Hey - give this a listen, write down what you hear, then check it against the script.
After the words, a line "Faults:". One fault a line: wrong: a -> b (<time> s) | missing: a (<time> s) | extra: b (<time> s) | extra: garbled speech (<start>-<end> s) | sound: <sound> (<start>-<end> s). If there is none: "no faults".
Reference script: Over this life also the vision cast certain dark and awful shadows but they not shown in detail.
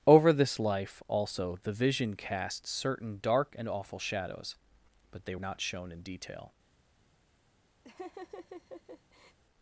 Over this life also the vision cast certain dark and awful shadows but they not shown in detail.
Faults:
sound: laugh (7.8-9.4 s)